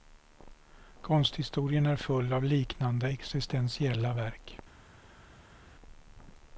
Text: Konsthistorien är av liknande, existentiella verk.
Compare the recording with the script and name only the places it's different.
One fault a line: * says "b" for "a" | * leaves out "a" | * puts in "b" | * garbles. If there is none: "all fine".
* puts in "full"